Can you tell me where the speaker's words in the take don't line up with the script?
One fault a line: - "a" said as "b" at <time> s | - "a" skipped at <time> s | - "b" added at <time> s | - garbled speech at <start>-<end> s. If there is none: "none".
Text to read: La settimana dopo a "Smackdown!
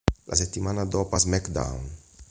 none